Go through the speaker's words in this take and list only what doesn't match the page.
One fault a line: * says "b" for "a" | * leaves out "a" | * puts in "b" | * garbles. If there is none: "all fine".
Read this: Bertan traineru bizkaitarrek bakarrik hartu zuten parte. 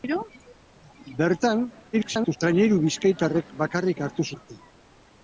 * garbles
* leaves out "zuten"